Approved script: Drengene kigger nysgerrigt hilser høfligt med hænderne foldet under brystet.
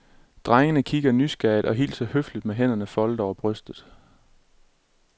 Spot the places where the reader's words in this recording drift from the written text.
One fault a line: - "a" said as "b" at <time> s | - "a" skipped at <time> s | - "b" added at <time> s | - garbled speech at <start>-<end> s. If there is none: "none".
- "og" added at 1.6 s
- "under" said as "over" at 3.2 s